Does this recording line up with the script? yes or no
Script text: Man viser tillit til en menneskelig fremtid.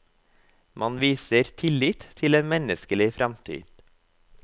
yes